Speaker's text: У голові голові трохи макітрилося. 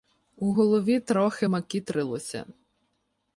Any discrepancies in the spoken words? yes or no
yes